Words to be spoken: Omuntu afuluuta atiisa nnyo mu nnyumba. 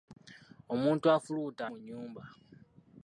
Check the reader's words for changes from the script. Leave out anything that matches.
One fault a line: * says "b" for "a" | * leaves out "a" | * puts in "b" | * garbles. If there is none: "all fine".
* leaves out "atiisa nnyo"